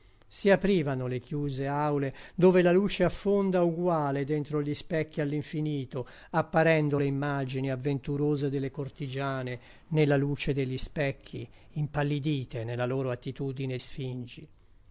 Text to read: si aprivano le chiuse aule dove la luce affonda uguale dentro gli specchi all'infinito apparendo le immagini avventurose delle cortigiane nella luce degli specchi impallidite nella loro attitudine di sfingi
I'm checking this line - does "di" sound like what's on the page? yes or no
no